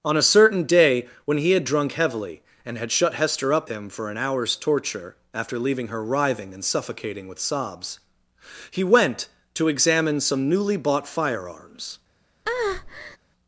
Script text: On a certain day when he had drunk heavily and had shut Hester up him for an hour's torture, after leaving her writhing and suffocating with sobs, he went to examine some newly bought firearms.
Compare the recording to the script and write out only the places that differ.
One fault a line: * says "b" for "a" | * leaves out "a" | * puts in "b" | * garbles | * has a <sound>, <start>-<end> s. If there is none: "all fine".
* has a breath, 12.5-13.2 s